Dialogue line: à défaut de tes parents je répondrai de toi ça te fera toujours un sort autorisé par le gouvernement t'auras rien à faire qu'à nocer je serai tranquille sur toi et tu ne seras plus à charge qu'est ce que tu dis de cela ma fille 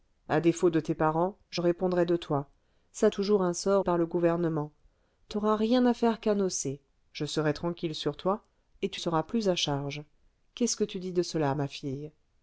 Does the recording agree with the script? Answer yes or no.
no